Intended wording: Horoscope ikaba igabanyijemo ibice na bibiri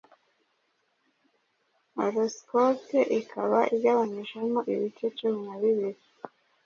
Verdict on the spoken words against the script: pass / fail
fail